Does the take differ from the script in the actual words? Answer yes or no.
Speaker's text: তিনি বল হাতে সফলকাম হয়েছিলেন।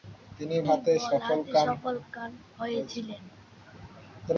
yes